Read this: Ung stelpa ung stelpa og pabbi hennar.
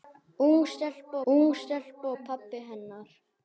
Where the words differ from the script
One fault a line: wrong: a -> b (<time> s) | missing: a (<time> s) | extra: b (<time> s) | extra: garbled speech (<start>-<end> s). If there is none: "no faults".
no faults